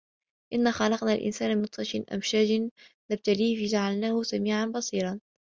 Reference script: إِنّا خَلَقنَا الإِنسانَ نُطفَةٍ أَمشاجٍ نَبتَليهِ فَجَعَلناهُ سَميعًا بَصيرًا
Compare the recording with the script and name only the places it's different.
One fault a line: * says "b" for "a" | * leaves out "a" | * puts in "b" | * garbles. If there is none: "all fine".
all fine